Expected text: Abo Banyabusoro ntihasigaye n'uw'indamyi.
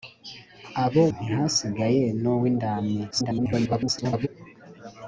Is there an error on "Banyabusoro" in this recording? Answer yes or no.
yes